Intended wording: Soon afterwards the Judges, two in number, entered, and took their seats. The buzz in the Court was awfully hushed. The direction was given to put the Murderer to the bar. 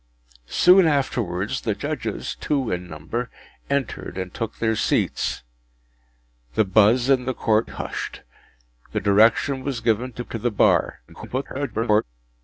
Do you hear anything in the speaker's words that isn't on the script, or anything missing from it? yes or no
yes